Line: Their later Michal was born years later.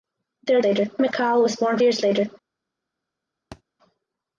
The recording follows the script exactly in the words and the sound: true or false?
false